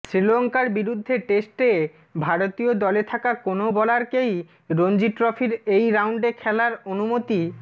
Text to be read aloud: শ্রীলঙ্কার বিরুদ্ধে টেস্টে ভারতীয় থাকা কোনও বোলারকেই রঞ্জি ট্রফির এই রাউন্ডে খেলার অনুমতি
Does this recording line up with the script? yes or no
no